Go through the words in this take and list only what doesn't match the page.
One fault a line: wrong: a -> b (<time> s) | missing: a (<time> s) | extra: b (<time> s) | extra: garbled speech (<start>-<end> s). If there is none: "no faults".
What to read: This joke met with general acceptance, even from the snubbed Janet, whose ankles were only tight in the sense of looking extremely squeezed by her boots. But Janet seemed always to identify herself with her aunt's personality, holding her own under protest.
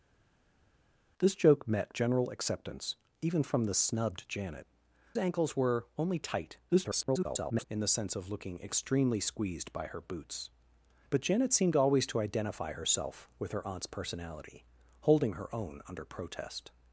missing: with (1.9 s)
missing: whose (4.7 s)
extra: garbled speech (6.7-7.6 s)